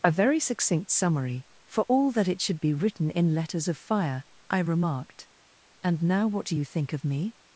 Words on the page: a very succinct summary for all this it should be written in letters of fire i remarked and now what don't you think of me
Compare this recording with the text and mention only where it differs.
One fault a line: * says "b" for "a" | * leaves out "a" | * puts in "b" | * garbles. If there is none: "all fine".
* says "that" for "this"
* says "do" for "don't"